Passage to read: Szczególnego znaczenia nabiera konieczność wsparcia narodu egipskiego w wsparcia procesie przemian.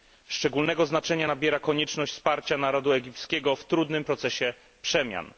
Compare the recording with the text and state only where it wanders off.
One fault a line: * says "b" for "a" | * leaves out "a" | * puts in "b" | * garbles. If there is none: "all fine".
* says "trudnym" for "wsparcia"